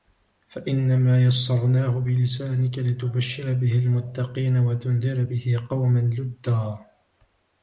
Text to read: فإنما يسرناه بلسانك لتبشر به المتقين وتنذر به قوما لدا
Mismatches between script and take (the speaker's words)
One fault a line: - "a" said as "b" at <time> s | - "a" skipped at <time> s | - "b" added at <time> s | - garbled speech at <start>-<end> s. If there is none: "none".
none